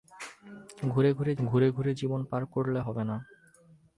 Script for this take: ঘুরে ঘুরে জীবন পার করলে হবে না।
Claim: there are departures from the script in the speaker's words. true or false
true